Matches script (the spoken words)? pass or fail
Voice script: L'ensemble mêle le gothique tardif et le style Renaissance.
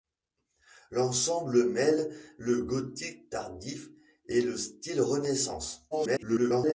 fail